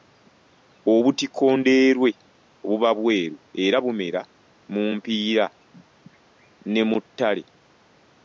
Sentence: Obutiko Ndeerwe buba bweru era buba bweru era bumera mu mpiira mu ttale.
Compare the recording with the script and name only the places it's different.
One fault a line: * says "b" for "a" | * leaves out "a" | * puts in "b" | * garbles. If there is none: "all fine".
* leaves out "buba bweru era"
* puts in "ne"